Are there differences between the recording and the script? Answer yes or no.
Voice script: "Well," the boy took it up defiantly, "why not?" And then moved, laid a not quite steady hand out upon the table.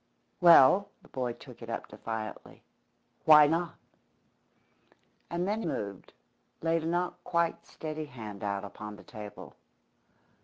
no